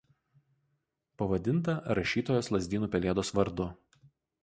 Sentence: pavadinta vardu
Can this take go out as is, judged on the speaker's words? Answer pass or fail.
fail